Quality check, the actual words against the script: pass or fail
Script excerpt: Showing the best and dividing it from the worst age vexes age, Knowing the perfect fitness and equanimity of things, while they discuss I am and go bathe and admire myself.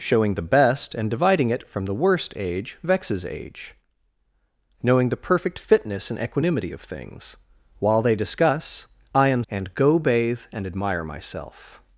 pass